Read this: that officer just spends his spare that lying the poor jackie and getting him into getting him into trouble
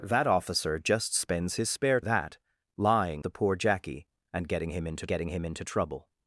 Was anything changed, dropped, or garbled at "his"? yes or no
no